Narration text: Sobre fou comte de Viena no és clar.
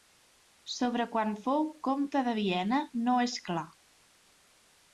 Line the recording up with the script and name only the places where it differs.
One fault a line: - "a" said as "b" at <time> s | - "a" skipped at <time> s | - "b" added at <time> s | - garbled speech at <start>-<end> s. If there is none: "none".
- "quan" added at 1.1 s